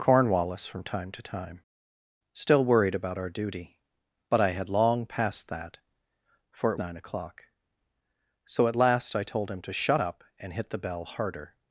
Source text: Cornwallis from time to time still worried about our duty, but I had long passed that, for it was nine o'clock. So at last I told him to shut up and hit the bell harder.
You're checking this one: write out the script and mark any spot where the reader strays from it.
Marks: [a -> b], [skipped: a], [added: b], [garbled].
Cornwallis from time to time still worried about our duty, but I had long passed that, for it [skipped: was] nine o'clock. So at last I told him to shut up and hit the bell harder.